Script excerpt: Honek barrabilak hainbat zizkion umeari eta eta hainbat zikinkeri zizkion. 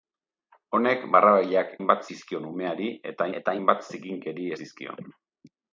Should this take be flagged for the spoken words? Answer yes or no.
no